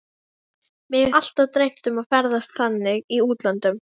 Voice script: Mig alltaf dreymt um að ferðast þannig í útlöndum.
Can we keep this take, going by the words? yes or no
yes